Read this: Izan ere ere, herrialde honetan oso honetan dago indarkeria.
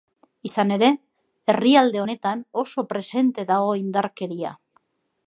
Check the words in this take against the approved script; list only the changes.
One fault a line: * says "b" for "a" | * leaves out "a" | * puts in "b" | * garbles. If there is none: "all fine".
* leaves out "ere"
* says "presente" for "honetan"